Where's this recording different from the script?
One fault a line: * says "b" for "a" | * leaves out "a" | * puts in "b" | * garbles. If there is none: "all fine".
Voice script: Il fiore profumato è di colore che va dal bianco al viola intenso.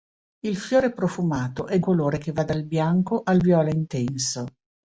all fine